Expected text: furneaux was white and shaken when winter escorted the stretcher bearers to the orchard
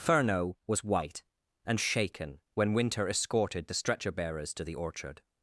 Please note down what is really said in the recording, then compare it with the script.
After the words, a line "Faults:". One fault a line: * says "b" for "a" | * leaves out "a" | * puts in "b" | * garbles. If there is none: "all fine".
furneaux was white and shaken when winter escorted the stretcher bearers to the orchard
Faults:
all fine